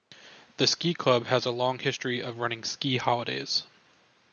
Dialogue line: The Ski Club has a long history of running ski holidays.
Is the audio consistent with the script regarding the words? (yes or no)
yes